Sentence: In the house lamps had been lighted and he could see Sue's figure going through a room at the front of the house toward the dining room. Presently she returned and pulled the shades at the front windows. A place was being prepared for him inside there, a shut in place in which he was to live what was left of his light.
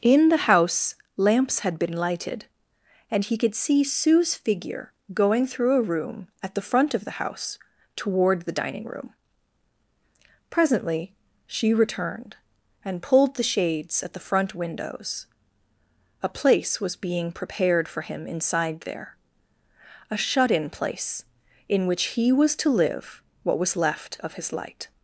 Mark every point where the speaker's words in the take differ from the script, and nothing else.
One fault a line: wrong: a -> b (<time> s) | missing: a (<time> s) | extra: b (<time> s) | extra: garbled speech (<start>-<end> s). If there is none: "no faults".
no faults